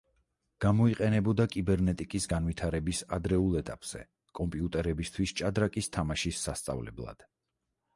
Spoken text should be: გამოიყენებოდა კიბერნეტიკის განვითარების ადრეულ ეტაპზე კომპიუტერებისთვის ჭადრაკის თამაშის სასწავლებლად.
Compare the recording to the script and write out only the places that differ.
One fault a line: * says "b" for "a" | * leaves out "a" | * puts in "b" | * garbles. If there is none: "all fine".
all fine